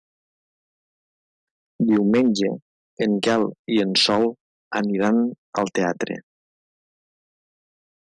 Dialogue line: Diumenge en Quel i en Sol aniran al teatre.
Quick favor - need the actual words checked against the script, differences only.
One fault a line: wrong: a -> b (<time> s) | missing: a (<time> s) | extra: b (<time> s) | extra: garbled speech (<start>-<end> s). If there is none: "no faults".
no faults